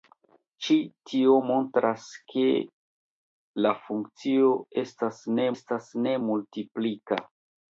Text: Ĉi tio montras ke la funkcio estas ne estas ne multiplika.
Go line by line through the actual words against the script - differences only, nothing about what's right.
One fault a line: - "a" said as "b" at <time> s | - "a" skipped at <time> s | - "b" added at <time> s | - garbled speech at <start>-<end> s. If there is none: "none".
none